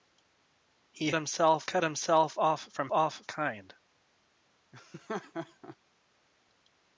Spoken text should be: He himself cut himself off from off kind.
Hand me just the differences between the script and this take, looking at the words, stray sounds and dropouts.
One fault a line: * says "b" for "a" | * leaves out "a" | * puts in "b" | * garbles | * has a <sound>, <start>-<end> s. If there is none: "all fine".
* has a laugh, 4.7-5.8 s